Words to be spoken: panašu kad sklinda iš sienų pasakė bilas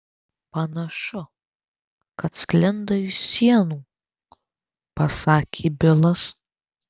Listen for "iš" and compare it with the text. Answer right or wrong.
right